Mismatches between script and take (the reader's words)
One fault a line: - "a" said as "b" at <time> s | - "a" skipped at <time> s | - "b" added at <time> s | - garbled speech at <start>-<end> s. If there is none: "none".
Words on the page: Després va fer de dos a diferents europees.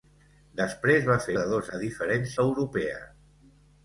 none